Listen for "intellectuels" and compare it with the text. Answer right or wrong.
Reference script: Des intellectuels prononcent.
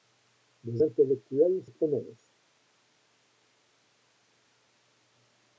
right